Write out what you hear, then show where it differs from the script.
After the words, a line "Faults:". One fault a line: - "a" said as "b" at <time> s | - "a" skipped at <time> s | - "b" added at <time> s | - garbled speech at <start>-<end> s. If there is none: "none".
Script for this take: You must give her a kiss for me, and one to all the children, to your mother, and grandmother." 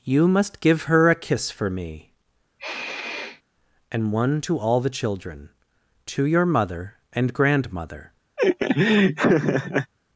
You must give her a kiss for me, and one to all the children, to your mother, and grandmother."
Faults:
none